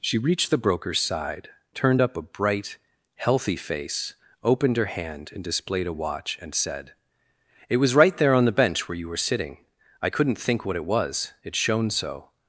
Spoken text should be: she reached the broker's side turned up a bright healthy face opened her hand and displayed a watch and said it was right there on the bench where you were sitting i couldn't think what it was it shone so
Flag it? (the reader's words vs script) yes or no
no